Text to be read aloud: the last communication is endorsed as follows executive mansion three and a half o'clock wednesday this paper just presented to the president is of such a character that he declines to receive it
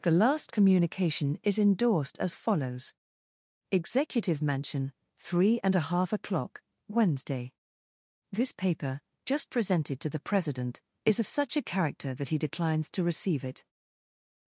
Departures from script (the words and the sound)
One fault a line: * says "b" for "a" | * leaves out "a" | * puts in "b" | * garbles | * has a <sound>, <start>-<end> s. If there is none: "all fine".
all fine